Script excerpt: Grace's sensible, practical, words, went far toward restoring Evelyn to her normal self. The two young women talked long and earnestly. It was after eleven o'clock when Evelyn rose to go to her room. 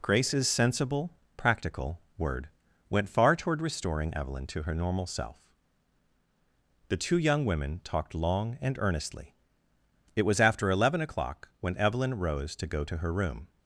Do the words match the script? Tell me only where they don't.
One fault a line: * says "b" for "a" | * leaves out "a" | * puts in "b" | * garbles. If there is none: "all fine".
* says "word" for "words"